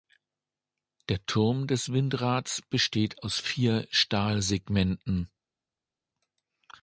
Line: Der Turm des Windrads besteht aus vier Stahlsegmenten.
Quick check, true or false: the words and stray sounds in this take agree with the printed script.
true